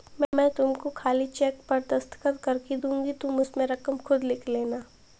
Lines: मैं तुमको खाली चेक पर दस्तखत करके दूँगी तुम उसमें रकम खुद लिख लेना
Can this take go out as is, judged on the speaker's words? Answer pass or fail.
pass